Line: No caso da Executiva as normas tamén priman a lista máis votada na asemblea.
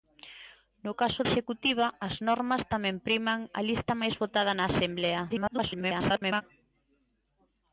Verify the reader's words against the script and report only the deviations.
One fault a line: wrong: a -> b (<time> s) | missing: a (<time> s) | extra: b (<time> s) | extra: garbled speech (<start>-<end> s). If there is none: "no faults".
missing: da (1.2 s)
extra: garbled speech (5.3-6.4 s)